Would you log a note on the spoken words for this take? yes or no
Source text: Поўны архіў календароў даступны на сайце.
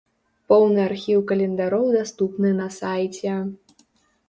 no